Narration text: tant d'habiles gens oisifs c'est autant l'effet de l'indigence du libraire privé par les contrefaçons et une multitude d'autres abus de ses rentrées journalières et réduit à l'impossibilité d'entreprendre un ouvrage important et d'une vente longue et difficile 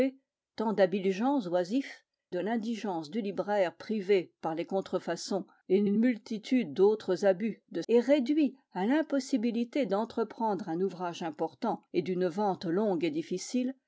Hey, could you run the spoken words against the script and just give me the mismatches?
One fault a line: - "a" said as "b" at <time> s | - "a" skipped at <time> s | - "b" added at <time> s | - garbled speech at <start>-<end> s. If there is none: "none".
- "c'est autant l'effet" skipped at 2.0 s
- "une" added at 5.9 s
- "ses rentrées journalières" skipped at 7.8 s